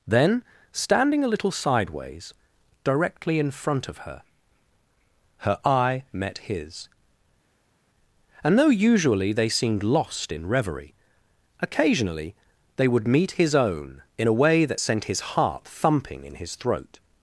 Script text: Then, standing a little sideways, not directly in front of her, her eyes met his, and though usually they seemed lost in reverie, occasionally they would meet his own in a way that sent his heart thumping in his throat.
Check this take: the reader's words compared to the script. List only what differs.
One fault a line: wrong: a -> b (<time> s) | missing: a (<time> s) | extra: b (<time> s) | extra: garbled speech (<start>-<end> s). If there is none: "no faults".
missing: not (2.3 s)
wrong: eyes -> eye (5.7 s)